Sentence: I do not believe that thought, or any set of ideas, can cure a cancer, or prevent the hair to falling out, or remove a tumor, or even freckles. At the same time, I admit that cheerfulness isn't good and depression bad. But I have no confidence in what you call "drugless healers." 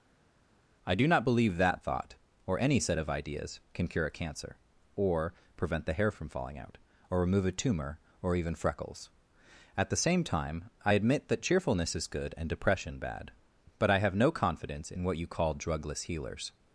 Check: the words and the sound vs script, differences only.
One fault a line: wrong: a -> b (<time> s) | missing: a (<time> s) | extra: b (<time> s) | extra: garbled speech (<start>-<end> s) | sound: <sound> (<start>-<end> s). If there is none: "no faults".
wrong: to -> from (6.1 s)
wrong: isn't -> is (12.0 s)